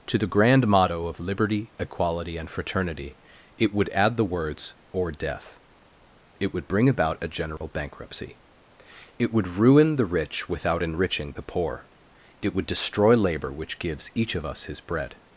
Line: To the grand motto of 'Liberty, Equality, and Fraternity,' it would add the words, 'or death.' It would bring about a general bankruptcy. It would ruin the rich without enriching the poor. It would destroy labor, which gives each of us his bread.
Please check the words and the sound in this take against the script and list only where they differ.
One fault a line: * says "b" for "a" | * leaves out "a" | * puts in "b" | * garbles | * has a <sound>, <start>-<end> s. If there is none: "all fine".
* has a dropout, 7.6-7.6 s